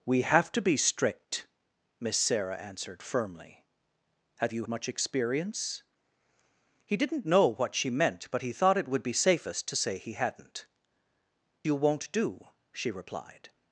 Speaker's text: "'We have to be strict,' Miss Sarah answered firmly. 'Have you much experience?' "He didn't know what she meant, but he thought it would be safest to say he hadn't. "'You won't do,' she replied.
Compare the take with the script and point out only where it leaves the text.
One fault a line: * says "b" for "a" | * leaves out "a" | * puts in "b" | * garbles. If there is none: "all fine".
all fine